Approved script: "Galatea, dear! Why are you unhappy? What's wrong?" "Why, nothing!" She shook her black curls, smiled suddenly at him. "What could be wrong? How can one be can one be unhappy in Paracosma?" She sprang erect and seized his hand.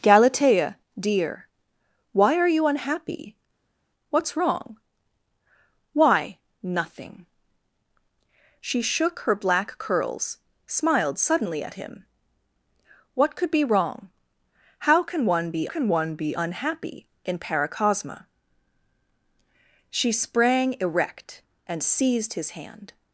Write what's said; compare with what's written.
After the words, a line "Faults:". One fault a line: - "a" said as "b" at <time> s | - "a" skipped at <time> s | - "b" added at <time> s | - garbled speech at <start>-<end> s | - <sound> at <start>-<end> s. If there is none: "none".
"Galatea, dear! Why are you unhappy? What's wrong?" "Why, nothing!" She shook her black curls, smiled suddenly at him. "What could be wrong? How can one be can one be unhappy in Paracosma?" She sprang erect and seized his hand.
Faults:
none